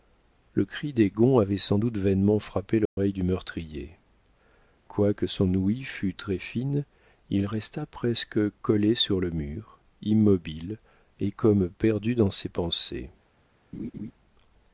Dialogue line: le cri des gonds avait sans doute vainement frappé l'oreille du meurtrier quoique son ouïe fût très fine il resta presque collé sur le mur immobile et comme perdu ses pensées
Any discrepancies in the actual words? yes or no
yes